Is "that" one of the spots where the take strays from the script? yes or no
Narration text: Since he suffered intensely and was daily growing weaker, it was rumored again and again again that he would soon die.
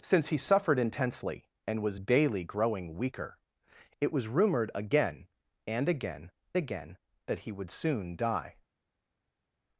no